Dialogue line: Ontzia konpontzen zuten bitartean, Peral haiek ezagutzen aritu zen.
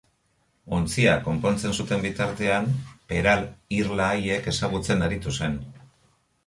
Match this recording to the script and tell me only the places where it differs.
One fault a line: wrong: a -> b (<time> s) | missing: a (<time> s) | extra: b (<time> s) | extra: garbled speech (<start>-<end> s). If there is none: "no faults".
extra: irla (3.8 s)